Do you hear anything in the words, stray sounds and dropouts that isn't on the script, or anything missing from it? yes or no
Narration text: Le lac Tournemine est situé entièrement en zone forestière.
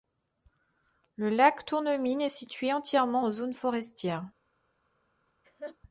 yes